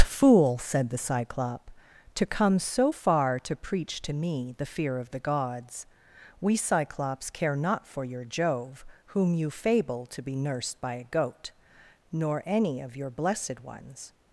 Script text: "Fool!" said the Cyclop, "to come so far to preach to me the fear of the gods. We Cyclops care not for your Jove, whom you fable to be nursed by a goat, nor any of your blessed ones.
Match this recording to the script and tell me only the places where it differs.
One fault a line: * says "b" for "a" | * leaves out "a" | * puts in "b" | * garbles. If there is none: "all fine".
all fine